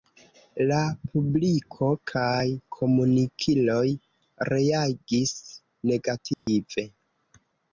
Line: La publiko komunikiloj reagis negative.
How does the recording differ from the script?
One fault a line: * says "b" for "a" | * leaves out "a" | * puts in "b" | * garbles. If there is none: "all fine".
* puts in "kaj"